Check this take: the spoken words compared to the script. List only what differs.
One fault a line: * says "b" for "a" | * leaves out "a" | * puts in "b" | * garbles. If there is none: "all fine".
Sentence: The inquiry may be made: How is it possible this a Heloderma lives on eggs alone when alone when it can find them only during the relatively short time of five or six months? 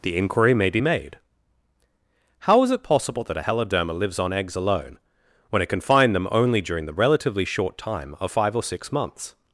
* says "that" for "this"
* leaves out "alone when"